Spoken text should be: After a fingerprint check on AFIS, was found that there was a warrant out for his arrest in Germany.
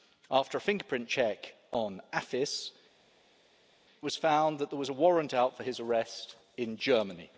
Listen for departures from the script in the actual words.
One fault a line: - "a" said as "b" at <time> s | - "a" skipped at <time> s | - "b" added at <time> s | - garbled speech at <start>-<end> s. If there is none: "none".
none